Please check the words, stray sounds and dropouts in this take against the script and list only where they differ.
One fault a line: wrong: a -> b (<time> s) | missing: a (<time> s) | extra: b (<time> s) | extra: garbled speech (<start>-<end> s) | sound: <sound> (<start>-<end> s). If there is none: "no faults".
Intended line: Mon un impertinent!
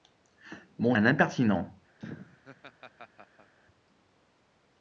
sound: laugh (2.0-3.5 s)